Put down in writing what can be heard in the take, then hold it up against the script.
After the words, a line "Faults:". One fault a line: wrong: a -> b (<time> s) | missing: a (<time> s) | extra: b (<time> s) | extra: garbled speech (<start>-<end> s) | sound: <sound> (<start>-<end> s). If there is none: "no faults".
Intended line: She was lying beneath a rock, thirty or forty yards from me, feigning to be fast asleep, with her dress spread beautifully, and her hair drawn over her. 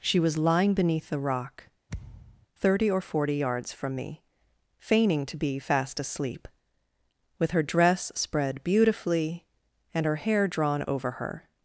She was lying beneath the rock, thirty or forty yards from me, feigning to be fast asleep, with her dress spread beautifully, and her hair drawn over her.
Faults:
wrong: a -> the (1.1 s)
sound: thud (1.9-2.5 s)